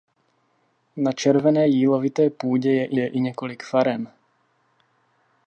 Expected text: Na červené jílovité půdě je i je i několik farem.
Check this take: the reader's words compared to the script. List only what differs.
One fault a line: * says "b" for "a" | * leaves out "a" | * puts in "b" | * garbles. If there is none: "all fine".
all fine